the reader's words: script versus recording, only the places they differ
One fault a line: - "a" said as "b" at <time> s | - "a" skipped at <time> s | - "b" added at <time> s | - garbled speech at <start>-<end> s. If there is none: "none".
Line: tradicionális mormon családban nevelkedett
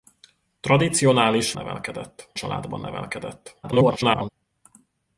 - "mormon" said as "nevelkedett" at 1.5 s
- garbled speech at 3.6-4.3 s